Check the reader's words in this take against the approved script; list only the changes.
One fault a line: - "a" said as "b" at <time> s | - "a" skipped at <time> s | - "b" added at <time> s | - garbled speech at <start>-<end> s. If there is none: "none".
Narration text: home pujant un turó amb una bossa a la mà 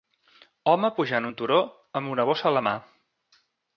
none